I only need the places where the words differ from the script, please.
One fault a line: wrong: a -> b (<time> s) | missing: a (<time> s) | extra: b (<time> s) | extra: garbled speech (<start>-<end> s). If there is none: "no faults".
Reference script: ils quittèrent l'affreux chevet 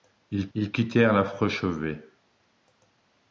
extra: ils (0.5 s)